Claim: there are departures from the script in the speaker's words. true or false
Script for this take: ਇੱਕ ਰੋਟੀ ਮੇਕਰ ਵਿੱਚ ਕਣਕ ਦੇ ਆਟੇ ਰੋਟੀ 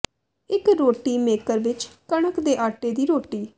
true